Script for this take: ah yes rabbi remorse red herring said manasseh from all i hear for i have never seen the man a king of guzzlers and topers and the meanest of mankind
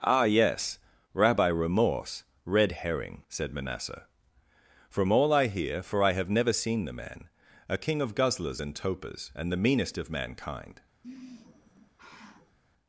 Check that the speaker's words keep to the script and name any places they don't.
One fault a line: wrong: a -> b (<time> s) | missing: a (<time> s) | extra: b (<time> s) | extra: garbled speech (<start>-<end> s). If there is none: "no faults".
no faults